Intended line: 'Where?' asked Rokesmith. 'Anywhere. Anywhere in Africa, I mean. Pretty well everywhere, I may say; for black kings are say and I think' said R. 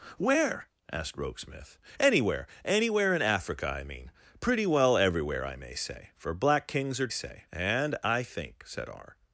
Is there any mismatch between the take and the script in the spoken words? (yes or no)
no